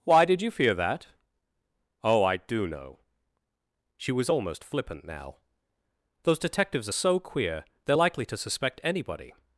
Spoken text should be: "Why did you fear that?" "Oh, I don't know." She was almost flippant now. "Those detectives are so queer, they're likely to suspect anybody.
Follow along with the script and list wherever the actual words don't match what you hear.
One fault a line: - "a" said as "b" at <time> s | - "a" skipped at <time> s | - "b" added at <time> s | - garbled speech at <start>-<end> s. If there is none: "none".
- "don't" said as "do" at 2.4 s